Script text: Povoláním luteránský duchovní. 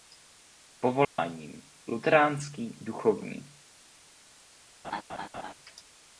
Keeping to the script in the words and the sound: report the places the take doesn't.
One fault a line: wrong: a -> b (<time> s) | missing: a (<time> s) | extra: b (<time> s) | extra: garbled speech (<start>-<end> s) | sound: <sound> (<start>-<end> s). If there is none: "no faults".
sound: dropout (1.0-1.2 s)
sound: laugh (4.8-5.5 s)